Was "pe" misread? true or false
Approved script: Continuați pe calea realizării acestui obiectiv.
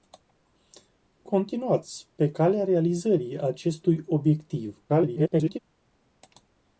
false